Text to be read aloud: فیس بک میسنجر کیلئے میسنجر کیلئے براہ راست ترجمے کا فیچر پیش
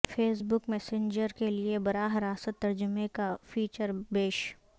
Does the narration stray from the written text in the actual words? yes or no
yes